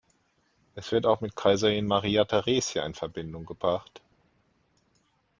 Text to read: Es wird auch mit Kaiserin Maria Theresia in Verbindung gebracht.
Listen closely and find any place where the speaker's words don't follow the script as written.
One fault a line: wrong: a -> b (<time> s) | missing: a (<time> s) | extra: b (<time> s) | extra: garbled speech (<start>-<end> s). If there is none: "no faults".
no faults